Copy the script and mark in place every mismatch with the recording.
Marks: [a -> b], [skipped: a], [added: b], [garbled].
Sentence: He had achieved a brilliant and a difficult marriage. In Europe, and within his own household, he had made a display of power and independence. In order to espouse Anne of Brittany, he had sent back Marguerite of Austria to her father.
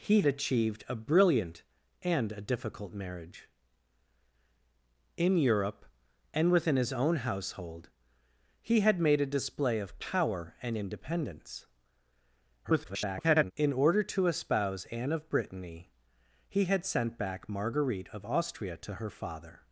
He [skipped: had] achieved a brilliant and a difficult marriage. In Europe, and within his own household, he had made a display of power and independence. [garbled] In order to espouse Anne of Brittany, he had sent back Marguerite of Austria to her father.